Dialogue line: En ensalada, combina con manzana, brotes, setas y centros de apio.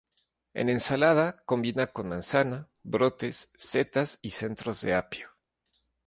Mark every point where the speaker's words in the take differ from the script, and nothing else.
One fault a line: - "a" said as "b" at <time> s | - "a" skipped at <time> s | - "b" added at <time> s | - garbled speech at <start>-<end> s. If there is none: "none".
none